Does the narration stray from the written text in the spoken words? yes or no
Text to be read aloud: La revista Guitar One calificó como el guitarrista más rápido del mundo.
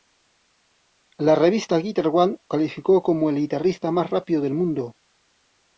no